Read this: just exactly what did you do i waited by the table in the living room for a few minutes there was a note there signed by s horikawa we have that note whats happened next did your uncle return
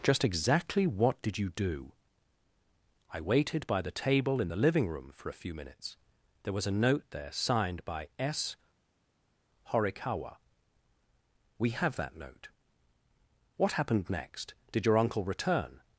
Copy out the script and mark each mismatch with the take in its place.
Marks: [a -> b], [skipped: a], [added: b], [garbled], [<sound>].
just exactly what did you do i waited by the table in the living room for a few minutes there was a note there signed by s horikawa we have that note [whats -> what] happened next did your uncle return